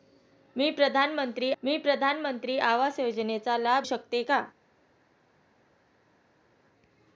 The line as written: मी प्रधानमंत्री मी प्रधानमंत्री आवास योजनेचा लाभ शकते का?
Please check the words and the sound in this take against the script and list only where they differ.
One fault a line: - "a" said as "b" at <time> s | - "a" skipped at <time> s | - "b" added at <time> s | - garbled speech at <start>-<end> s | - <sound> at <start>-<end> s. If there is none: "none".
none